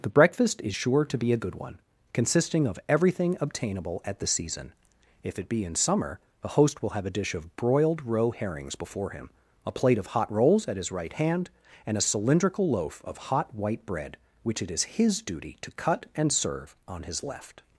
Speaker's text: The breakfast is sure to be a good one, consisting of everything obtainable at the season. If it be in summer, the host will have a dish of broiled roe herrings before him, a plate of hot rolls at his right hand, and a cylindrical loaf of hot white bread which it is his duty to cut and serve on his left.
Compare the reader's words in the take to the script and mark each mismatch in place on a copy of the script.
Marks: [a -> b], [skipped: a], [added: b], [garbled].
The breakfast is sure to be a good one, consisting of everything obtainable at the season. If it be in summer, the host will have a dish of broiled roe herrings before him, a plate of hot rolls at his right hand, and a cylindrical loaf of hot white bread which it is his duty to cut and serve on his left.